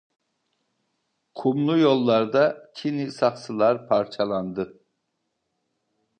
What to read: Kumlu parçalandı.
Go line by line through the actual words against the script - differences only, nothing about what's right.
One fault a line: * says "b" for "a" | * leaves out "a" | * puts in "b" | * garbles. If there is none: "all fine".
* puts in "yollarda çini saksılar"